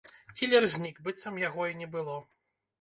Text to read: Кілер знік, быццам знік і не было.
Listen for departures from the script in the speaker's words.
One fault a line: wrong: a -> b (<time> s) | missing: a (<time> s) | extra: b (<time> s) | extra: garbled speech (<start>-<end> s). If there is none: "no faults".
wrong: знік -> яго (1.5 s)